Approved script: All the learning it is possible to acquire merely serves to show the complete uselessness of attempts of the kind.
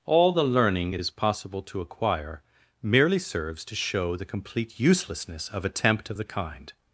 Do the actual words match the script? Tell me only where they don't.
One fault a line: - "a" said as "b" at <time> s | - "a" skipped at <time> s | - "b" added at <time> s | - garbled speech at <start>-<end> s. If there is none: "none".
- "attempts" said as "attempt" at 5.6 s